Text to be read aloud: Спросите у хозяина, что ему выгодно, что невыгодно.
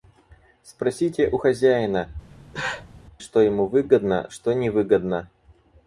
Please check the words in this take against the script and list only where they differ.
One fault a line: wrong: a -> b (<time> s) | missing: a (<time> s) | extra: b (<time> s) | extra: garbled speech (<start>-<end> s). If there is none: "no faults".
no faults